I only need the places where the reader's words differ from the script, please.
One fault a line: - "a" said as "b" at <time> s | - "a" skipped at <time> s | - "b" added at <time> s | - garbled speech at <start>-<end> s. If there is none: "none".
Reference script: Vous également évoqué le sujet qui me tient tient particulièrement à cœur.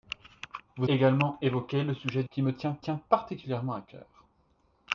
none